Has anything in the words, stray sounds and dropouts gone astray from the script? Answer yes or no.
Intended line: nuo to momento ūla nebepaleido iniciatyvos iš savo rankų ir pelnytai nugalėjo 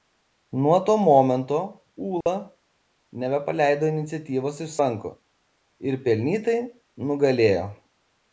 yes